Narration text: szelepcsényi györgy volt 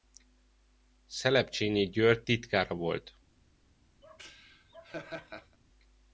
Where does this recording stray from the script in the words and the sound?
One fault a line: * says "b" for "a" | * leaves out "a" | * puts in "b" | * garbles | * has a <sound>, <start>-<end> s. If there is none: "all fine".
* puts in "titkára"
* has a laugh, 4.0-5.6 s